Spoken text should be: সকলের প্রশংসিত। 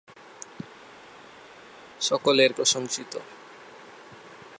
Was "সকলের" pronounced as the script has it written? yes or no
yes